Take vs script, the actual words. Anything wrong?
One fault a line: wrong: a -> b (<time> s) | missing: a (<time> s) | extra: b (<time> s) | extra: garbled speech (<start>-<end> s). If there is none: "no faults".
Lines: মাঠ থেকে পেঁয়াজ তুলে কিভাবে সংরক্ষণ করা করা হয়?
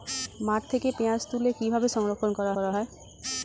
no faults